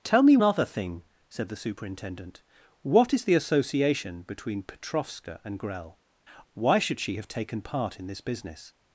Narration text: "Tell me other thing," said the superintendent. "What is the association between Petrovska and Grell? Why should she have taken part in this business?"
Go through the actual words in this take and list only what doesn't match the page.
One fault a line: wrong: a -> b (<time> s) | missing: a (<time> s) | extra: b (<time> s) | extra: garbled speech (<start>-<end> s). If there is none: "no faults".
no faults